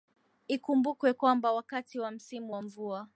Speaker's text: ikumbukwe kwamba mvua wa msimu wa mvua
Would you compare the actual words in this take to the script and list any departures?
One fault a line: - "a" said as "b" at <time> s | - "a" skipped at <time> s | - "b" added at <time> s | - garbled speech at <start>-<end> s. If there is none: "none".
- "mvua" said as "wakati" at 1.5 s